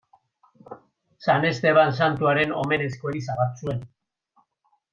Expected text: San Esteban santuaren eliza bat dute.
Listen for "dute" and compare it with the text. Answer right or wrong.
wrong